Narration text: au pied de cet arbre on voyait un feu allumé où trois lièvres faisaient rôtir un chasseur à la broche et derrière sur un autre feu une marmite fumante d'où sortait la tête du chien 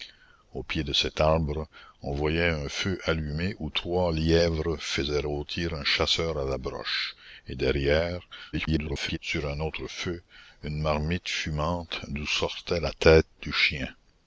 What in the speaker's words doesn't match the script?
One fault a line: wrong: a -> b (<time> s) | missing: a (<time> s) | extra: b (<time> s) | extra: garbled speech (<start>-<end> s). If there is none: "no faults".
extra: garbled speech (8.5-9.2 s)